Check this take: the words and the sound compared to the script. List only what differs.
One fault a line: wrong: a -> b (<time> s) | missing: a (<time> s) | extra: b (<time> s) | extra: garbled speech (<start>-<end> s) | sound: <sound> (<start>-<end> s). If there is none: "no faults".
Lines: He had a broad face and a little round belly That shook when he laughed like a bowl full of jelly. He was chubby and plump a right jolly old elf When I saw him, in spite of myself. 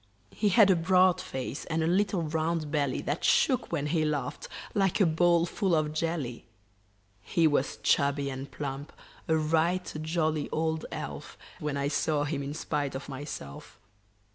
no faults